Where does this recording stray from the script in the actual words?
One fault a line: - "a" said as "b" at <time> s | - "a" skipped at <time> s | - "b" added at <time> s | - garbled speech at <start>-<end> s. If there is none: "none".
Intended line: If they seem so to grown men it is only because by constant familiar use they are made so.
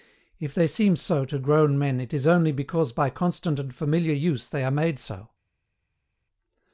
- "and" added at 3.6 s